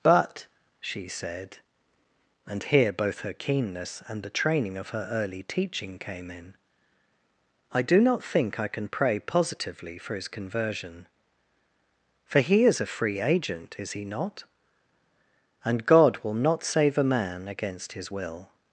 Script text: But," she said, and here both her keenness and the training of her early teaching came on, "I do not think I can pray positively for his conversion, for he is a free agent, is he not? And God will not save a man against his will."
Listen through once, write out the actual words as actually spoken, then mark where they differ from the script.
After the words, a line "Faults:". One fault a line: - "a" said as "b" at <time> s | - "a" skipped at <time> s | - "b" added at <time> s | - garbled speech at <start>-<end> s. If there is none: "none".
But," she said, and here both her keenness and the training of her early teaching came in, "I do not think I can pray positively for his conversion, for he is a free agent, is he not? And God will not save a man against his will."
Faults:
- "on" said as "in" at 6.3 s